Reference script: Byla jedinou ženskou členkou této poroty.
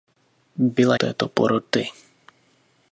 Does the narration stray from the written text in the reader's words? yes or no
yes